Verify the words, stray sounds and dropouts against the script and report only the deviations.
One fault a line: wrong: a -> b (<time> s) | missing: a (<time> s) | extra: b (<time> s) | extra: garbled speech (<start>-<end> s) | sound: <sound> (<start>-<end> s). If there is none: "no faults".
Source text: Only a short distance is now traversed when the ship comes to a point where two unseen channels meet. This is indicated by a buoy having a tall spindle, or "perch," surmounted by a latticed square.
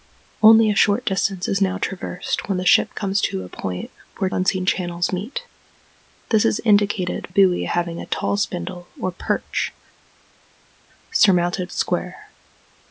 missing: two (4.3 s)
missing: by a (7.3 s)
missing: by a latticed (11.7 s)